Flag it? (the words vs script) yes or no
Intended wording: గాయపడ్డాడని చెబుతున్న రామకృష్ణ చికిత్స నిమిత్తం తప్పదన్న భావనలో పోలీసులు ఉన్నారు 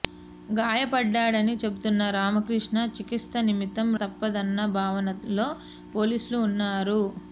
no